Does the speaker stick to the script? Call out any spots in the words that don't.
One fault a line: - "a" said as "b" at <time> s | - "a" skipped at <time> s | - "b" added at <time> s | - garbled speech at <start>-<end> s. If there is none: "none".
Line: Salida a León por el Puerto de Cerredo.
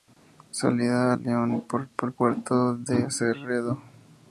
none